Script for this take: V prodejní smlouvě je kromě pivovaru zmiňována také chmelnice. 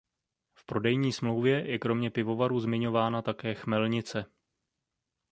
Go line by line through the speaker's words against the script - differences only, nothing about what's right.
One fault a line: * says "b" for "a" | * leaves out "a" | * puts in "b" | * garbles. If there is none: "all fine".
all fine